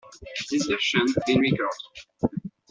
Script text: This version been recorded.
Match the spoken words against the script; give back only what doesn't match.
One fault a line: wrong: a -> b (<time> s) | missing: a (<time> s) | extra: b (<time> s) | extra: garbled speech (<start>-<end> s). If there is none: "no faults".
no faults